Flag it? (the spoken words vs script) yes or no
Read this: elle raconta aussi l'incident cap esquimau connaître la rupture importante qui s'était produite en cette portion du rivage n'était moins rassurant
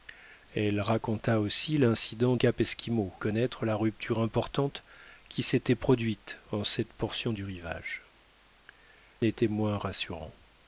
no